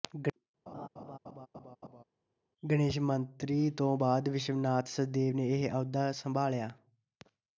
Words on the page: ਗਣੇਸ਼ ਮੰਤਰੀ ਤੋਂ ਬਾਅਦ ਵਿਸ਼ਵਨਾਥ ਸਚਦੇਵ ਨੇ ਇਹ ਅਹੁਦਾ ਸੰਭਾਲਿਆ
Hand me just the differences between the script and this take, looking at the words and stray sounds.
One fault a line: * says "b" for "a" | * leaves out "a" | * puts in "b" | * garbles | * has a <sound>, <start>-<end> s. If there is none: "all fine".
* has a laugh, 0.7-2.0 s